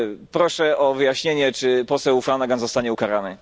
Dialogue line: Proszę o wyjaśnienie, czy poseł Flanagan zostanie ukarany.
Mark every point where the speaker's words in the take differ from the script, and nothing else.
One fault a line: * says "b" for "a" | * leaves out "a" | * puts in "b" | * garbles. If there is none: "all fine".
all fine